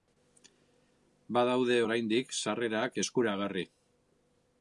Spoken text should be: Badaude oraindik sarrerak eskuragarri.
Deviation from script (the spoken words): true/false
false